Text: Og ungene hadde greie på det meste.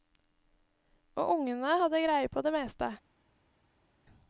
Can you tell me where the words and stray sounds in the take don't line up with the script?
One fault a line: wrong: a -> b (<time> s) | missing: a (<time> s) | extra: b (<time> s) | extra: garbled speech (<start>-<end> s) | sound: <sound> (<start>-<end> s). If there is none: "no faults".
no faults